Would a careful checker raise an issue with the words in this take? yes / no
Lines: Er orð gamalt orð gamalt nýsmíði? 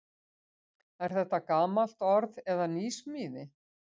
yes